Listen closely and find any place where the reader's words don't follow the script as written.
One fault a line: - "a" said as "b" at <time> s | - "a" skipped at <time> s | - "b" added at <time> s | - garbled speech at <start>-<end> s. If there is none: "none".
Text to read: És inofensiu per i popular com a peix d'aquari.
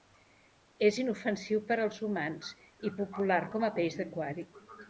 - "als humans" added at 1.9 s